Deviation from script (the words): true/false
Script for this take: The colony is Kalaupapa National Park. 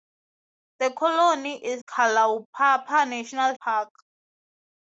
false